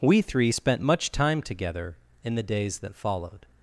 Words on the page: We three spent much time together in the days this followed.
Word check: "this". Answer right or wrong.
wrong